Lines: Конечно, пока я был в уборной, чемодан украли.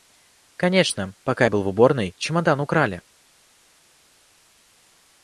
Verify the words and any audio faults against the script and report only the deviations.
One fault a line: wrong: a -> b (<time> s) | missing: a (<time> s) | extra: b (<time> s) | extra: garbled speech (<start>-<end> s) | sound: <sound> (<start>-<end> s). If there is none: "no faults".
no faults